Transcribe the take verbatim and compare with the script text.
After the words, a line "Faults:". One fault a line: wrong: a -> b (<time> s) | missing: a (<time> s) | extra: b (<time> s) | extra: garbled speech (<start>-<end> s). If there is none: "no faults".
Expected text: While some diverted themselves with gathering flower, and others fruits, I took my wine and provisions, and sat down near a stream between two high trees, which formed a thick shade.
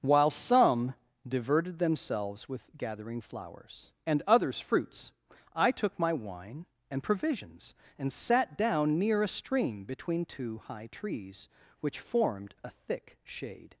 While some diverted themselves with gathering flowers, and others fruits, I took my wine and provisions, and sat down near a stream between two high trees, which formed a thick shade.
Faults:
wrong: flower -> flowers (3.2 s)